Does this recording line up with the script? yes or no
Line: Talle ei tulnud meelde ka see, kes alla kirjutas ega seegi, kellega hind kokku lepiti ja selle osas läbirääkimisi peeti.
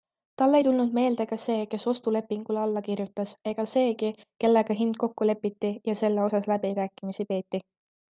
no